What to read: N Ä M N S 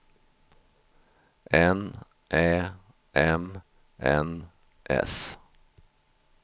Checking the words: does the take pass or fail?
pass